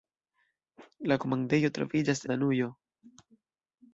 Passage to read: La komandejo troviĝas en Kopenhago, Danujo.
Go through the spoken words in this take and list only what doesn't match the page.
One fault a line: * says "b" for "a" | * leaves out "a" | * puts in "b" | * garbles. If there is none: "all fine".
* leaves out "en Kopenhago"